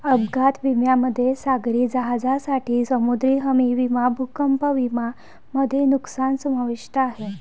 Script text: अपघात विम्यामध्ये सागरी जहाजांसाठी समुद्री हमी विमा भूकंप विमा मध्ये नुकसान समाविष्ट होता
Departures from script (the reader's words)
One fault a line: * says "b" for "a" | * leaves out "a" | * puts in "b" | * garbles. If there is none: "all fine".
* says "आहे" for "होता"